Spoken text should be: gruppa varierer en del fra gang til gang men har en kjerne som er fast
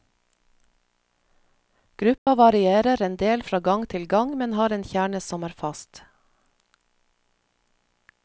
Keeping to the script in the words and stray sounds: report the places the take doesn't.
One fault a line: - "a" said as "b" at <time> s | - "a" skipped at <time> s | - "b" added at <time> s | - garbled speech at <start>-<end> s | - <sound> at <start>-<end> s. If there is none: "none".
- dropout at 2.2-2.3 s